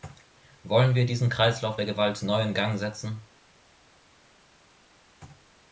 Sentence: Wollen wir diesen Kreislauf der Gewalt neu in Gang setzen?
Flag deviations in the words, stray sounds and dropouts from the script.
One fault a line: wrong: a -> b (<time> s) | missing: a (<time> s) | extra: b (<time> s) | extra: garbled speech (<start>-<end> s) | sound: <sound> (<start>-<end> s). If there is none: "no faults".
no faults